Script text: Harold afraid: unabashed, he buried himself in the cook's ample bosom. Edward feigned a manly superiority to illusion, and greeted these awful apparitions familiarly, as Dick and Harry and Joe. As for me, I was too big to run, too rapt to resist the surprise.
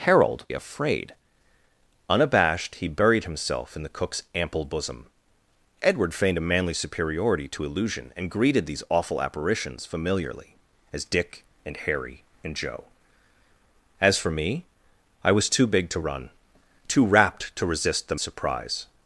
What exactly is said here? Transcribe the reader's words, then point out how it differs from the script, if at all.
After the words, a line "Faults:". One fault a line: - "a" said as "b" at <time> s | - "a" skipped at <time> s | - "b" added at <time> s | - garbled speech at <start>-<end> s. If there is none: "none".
Harold afraid: unabashed, he buried himself in the cook's ample bosom. Edward feigned a manly superiority to illusion, and greeted these awful apparitions familiarly, as Dick and Harry and Joe. As for me, I was too big to run, too rapt to resist the surprise.
Faults:
none